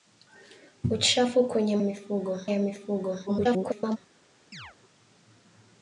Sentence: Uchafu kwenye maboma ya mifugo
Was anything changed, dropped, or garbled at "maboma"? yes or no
yes